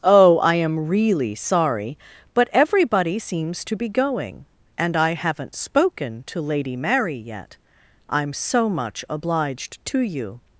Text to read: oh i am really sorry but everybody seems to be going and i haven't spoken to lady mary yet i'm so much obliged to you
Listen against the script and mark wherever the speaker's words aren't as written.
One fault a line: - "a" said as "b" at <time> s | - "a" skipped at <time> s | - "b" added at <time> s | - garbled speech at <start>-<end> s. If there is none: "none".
none